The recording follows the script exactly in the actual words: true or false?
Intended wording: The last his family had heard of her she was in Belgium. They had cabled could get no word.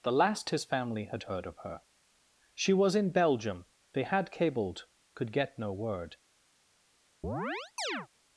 true